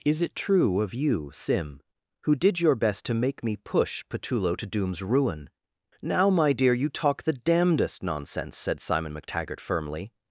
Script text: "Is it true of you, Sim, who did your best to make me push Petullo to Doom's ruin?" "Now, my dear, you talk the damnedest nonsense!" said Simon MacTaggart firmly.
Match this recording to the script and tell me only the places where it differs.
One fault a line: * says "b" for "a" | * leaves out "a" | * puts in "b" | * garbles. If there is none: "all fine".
all fine